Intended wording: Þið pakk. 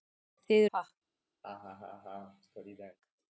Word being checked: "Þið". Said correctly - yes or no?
yes